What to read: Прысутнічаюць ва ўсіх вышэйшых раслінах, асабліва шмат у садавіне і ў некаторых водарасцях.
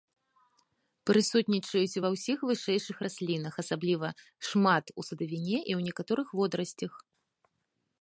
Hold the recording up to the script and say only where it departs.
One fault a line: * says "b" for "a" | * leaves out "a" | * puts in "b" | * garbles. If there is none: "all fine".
all fine